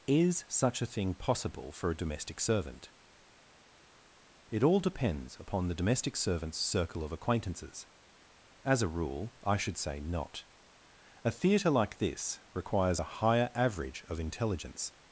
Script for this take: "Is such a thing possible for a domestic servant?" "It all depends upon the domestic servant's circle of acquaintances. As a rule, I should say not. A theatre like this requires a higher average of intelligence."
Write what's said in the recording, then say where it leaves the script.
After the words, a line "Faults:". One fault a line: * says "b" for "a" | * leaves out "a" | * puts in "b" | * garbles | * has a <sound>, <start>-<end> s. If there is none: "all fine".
"Is such a thing possible for a domestic servant?" "It all depends upon the domestic servant's circle of acquaintances. As a rule, I should say not. A theatre like this requires a higher average of intelligence."
Faults:
all fine